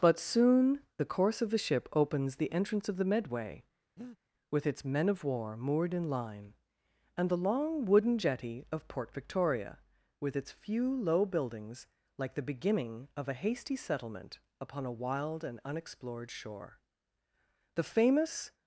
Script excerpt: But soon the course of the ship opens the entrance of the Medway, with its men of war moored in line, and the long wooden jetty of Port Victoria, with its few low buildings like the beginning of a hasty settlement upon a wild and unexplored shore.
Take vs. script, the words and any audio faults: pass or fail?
fail